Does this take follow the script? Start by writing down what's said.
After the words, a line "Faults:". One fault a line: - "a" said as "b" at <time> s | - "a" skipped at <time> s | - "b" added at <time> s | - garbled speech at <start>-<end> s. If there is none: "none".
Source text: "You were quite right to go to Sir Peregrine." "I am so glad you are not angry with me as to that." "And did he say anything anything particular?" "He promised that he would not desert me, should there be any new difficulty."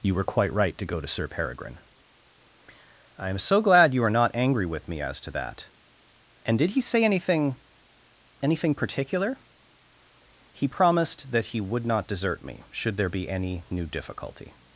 "You were quite right to go to Sir Peregrine." "I am so glad you are not angry with me as to that." "And did he say anything anything particular?" "He promised that he would not desert me, should there be any new difficulty."
Faults:
none